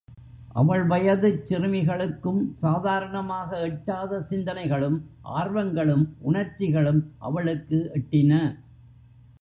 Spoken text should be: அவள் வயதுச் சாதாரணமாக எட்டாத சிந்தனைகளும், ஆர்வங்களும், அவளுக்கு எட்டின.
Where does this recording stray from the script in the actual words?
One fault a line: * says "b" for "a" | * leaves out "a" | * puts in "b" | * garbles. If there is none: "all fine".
* puts in "சிறுமிகளுக்கும்"
* puts in "உணர்ச்சிகளும்"